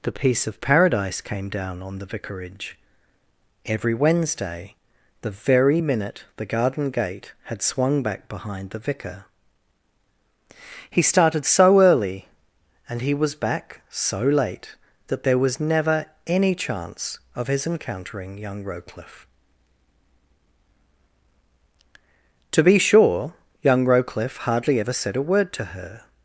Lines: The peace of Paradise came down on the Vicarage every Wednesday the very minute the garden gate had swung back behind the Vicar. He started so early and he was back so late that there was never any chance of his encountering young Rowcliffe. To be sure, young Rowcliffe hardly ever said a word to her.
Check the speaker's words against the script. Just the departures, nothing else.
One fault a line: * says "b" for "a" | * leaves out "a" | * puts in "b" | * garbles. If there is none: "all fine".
all fine